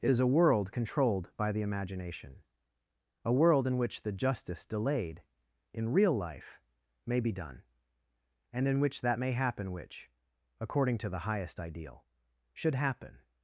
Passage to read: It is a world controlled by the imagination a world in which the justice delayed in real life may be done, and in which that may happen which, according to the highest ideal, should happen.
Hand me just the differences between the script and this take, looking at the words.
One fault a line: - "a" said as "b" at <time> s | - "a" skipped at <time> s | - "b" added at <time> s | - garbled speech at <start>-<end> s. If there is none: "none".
none